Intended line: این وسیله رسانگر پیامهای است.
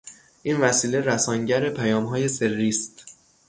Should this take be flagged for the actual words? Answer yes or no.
yes